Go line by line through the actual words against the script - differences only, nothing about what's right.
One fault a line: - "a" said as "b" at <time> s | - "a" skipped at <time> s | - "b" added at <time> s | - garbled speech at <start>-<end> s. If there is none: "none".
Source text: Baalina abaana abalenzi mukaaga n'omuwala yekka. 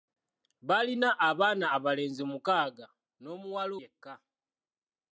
none